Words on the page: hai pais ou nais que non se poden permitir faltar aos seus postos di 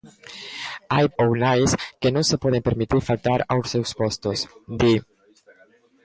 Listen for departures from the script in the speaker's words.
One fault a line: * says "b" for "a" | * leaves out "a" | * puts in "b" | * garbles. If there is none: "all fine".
* leaves out "pais"